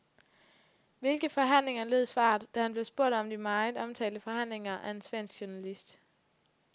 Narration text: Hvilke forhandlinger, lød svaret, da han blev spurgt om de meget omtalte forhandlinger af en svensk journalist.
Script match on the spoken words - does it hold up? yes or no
yes